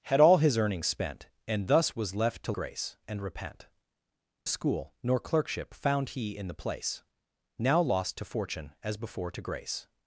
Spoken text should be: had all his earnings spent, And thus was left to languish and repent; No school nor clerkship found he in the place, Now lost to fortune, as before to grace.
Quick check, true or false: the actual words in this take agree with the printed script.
false